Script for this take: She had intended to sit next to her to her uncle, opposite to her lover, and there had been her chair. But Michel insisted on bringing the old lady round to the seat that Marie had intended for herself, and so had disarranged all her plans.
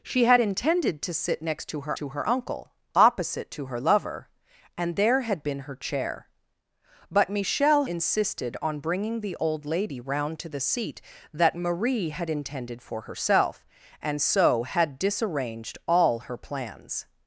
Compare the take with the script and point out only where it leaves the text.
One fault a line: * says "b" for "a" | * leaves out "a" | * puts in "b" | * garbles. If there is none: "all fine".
all fine